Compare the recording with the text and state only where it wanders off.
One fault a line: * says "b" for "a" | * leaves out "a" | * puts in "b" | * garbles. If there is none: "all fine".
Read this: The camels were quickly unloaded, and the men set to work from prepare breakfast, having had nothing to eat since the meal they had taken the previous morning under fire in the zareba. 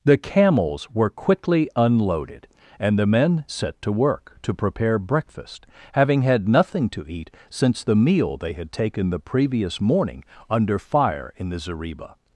* says "to" for "from"